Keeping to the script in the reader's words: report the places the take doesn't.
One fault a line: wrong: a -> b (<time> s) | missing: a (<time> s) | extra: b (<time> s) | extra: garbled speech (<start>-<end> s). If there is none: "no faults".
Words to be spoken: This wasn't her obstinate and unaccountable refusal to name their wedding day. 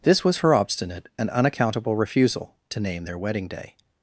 wrong: wasn't -> was (0.2 s)